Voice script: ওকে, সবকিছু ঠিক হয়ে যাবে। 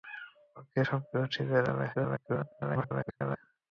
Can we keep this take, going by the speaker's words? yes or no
no